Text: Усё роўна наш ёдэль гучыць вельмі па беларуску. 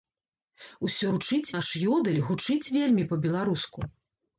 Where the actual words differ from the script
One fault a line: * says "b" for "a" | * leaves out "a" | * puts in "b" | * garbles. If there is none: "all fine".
* says "гучыць" for "роўна"